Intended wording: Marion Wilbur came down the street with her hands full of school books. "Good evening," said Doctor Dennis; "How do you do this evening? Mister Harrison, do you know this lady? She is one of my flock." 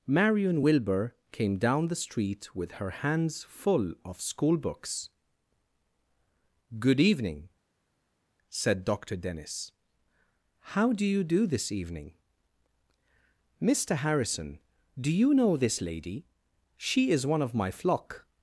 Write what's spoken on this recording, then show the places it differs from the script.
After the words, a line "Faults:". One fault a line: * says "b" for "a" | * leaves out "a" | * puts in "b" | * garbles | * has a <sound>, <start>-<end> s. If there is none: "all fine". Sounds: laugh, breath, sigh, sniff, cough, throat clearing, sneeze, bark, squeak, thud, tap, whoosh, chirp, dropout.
Marion Wilbur came down the street with her hands full of school books. "Good evening," said Doctor Dennis; "How do you do this evening? Mister Harrison, do you know this lady? She is one of my flock."
Faults:
all fine